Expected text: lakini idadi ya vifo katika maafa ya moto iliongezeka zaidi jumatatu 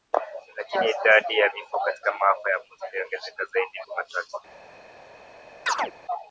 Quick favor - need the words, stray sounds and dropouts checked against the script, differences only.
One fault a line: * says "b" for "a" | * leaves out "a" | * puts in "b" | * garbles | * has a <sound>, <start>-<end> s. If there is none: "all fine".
* has a chirp, 5.7-5.9 s